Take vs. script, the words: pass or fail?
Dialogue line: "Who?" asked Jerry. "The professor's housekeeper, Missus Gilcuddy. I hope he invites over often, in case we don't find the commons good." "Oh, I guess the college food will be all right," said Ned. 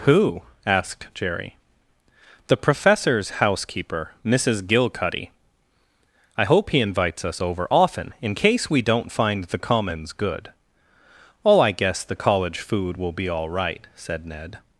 fail